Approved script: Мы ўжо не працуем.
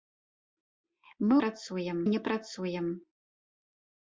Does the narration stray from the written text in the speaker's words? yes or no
yes